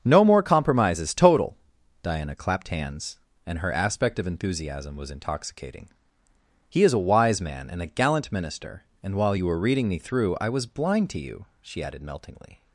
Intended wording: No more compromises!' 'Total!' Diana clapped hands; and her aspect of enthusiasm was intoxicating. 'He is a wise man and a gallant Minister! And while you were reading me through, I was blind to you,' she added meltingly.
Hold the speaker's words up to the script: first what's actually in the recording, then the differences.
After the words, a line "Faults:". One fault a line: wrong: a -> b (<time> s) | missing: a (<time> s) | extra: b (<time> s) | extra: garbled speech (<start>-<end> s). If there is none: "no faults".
No more compromises!' 'Total!' Diana clapped hands; and her aspect of enthusiasm was intoxicating. 'He is a wise man and a gallant Minister! And while you were reading me through, I was blind to you,' she added meltingly.
Faults:
no faults